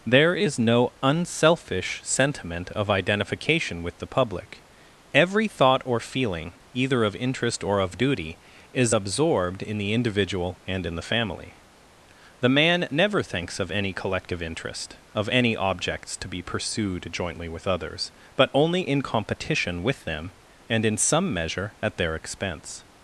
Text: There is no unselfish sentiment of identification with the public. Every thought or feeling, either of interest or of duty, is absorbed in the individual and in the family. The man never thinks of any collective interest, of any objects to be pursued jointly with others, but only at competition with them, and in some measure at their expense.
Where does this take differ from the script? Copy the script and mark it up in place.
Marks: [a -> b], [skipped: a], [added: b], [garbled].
There is no unselfish sentiment of identification with the public. Every thought or feeling, either of interest or of duty, is absorbed in the individual and in the family. The man never thinks of any collective interest, of any objects to be pursued jointly with others, but only [at -> in] competition with them, and in some measure at their expense.